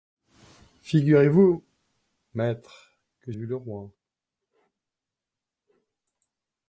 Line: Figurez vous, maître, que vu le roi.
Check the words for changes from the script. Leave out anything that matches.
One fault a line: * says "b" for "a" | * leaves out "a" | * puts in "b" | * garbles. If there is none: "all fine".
all fine